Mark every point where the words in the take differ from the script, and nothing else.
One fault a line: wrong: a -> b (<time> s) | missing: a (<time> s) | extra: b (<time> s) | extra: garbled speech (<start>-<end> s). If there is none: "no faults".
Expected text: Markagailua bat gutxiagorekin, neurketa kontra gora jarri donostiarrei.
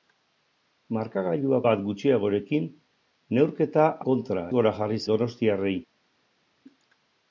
no faults